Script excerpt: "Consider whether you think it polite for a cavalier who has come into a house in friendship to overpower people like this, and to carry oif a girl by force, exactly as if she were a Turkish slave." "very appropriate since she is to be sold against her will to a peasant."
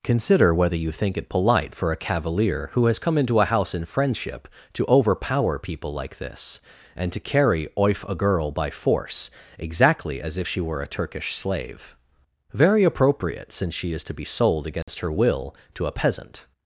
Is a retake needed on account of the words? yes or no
no